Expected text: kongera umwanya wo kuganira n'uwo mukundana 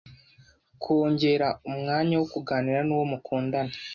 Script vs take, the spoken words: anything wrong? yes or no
no